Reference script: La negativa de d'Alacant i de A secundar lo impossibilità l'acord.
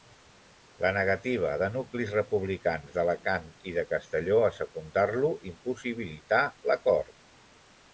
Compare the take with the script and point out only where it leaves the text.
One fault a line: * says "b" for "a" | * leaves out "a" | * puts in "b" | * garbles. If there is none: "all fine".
* puts in "nuclis republicans"
* puts in "Castelló"